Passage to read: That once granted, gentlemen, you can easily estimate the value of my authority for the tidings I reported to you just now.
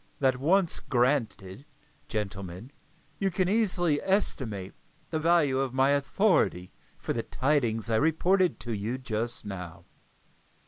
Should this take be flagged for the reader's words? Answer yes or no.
no